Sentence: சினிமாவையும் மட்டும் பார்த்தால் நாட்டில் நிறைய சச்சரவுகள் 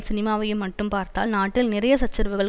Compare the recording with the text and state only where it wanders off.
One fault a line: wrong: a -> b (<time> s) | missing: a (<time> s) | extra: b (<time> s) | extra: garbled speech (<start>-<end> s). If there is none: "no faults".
no faults